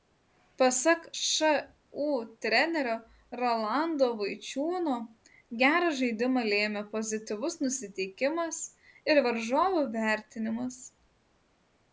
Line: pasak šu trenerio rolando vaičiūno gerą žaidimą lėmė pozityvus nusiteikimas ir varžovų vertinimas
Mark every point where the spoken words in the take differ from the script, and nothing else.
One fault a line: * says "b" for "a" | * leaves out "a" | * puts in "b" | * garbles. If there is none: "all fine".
all fine